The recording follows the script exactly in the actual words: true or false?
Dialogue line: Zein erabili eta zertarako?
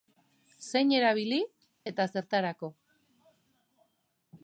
true